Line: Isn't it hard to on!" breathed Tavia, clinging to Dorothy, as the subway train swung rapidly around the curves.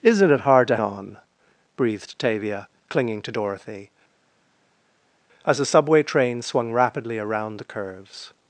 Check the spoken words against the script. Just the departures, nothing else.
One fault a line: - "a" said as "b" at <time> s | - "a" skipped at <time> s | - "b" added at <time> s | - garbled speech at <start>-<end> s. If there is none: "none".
none